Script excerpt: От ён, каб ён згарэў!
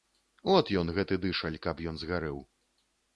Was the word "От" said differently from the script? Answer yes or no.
no